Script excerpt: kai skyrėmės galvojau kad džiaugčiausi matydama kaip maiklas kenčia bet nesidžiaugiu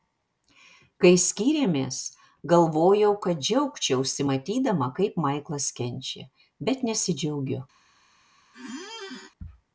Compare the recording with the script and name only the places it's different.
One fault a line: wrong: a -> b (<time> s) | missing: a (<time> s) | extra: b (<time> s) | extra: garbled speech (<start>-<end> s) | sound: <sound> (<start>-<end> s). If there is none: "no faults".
sound: squeak (8.5-9.3 s)